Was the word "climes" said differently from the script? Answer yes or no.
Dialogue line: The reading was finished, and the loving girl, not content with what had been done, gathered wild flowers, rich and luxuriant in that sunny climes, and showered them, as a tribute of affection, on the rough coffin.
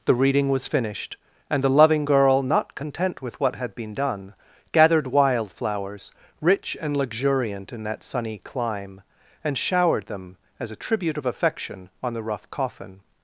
yes